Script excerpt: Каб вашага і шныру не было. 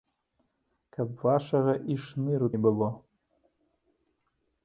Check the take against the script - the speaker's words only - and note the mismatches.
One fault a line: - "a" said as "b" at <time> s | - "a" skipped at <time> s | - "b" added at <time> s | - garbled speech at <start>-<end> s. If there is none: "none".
none